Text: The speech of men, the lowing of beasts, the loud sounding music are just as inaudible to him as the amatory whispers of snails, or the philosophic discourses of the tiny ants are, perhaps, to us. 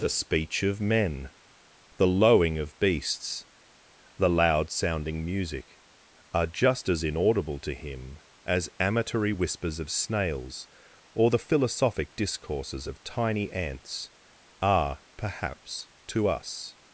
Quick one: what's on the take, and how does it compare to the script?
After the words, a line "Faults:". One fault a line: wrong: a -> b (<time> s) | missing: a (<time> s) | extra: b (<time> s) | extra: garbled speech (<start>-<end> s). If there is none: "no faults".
The speech of men, the lowing of beasts, the loud sounding music are just as inaudible to him as amatory whispers of snails, or the philosophic discourses of tiny ants are, perhaps, to us.
Faults:
missing: the (8.7 s)
missing: the (13.0 s)